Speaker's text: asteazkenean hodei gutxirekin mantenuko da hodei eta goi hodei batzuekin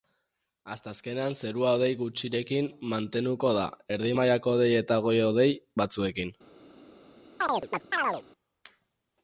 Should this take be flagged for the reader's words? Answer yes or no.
yes